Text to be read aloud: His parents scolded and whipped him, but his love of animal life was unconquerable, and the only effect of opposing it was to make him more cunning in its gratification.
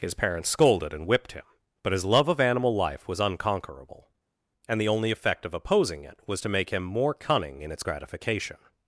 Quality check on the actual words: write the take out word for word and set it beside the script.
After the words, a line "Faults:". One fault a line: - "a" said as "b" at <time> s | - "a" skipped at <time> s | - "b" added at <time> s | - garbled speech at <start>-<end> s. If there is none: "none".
His parents scolded and whipped him, but his love of animal life was unconquerable, and the only effect of opposing it was to make him more cunning in its gratification.
Faults:
none